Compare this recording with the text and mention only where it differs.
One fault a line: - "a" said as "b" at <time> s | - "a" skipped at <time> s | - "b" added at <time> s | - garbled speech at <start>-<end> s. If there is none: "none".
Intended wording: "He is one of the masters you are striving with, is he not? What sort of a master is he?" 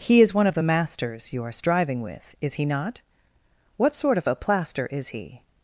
- "master" said as "plaster" at 4.3 s